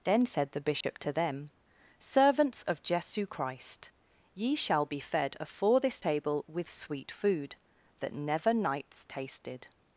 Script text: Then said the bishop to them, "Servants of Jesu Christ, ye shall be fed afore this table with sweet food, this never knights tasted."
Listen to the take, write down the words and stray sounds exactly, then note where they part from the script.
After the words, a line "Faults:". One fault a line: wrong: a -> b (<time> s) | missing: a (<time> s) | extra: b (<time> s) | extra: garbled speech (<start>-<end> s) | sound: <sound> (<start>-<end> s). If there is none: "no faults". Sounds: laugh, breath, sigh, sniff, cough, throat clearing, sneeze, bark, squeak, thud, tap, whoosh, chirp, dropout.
Then said the bishop to them, "Servants of Jesu Christ, ye shall be fed afore this table with sweet food, that never knights tasted."
Faults:
sound: dropout (0.8-0.8 s)
wrong: this -> that (8.0 s)